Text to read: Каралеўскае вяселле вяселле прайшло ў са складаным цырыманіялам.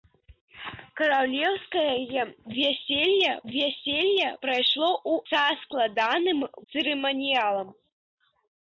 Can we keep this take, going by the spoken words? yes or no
yes